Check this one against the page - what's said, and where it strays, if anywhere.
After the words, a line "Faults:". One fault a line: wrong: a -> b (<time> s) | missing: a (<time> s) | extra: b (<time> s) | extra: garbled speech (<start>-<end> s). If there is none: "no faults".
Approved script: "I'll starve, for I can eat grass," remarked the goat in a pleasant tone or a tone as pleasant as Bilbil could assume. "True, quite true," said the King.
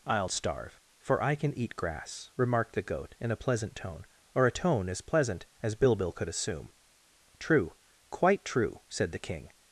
"I'll starve, for I can eat grass," remarked the goat in a pleasant tone or a tone as pleasant as Bilbil could assume. "True, quite true," said the King.
Faults:
no faults